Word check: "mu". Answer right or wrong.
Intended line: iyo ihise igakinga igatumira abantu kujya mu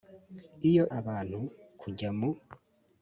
right